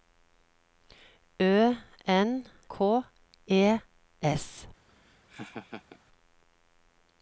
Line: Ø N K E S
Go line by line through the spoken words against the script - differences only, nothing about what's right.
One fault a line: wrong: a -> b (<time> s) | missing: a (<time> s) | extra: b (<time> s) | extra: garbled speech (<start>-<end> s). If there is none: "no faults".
no faults